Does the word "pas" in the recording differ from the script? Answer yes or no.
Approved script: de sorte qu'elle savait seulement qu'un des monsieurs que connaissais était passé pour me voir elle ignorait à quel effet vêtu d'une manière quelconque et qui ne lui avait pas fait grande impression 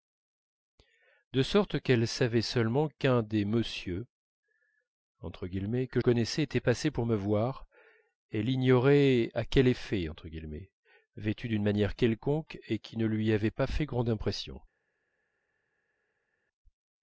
no